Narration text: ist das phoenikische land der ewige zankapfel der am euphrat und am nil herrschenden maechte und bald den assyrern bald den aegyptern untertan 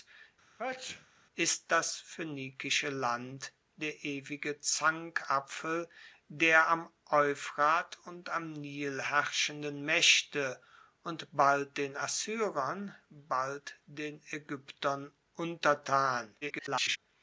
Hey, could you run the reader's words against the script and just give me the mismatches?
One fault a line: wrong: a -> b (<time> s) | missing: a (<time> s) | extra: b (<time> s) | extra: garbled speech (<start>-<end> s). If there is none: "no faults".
extra: garbled speech (16.4-17.0 s)